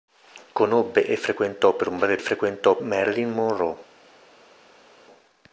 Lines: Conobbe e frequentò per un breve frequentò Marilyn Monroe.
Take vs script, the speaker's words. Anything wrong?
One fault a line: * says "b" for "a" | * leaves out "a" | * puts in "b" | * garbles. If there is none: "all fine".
all fine